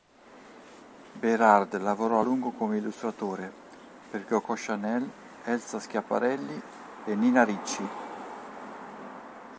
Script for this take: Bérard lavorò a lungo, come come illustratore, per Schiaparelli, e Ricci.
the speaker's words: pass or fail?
fail